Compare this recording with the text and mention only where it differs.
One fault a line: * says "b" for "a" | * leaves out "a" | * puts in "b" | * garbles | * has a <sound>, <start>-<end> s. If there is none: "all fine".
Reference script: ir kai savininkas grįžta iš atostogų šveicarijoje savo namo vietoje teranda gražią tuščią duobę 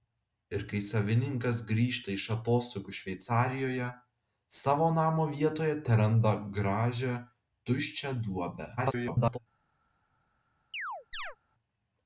* garbles
* has a chirp, 10.7-11.4 s